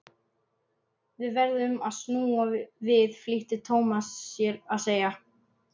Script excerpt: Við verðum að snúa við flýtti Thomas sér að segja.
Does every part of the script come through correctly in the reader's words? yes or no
yes